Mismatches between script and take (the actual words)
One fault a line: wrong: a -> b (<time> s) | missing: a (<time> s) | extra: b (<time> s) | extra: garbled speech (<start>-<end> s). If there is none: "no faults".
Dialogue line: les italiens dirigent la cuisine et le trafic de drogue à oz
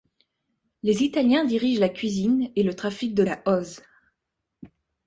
missing: drogue (3.2 s)